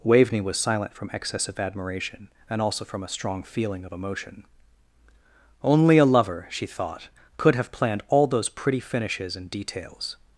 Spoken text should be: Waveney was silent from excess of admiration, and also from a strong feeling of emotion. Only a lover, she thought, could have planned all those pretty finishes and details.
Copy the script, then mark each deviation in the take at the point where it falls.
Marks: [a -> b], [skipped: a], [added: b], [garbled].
Waveney was silent from excess of admiration, and also from a strong feeling of emotion. Only a lover, she thought, could have planned all those pretty finishes and details.